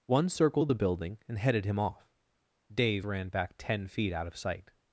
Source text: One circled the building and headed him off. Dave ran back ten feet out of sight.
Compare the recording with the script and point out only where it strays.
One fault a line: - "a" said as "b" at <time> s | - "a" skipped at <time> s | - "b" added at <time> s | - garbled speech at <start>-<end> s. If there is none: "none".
none